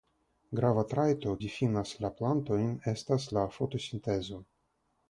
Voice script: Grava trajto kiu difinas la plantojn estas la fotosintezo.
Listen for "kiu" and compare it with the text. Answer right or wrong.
wrong